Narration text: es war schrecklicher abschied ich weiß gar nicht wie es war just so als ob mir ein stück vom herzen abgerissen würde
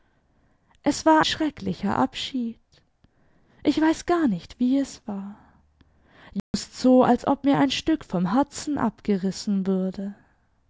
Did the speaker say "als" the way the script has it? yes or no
yes